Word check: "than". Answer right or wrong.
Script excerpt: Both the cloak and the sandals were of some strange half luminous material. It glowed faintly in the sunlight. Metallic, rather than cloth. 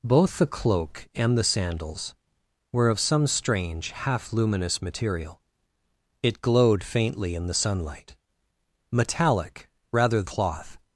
wrong